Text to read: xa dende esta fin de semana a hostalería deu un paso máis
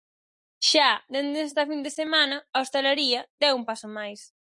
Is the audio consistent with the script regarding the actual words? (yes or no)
yes